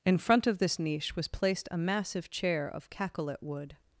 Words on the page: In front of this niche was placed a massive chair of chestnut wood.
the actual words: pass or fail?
fail